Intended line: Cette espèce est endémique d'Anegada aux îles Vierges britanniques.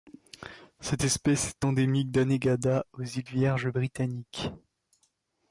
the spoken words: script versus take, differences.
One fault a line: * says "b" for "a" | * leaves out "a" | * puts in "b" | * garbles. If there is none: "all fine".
all fine